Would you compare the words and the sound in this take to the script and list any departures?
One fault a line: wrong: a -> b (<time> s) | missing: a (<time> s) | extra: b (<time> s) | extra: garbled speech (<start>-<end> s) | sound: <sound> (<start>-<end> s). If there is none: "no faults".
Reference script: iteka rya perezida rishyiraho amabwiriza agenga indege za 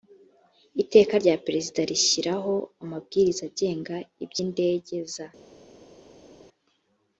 extra: iby (4.2 s)